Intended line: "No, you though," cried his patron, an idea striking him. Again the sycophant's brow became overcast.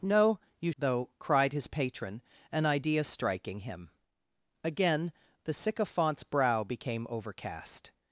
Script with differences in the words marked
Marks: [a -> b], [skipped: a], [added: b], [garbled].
"No, you though," cried his patron, an idea striking him. Again the sycophant's brow became overcast.